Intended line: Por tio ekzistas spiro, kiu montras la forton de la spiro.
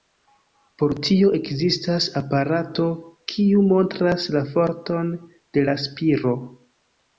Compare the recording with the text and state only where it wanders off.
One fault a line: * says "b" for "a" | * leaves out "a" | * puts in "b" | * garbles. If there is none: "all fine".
* says "aparato" for "spiro"